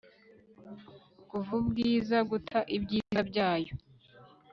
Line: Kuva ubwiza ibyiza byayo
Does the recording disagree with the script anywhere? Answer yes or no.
yes